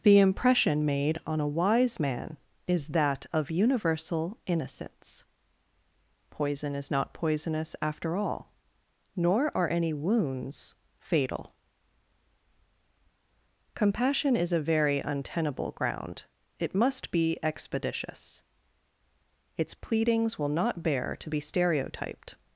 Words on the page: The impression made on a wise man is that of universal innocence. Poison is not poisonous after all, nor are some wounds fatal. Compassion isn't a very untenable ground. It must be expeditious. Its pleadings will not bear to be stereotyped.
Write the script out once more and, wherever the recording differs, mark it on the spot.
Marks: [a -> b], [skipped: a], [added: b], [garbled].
The impression made on a wise man is that of universal innocence. Poison is not poisonous after all, nor are [some -> any] wounds fatal. Compassion [isn't -> is] a very untenable ground. It must be expeditious. Its pleadings will not bear to be stereotyped.